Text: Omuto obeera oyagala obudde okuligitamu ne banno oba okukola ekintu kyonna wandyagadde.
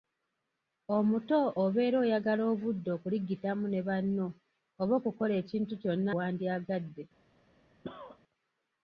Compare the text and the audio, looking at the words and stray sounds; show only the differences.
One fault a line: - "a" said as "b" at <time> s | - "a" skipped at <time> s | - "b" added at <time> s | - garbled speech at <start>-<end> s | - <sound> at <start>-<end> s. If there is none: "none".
- cough at 7.8-8.2 s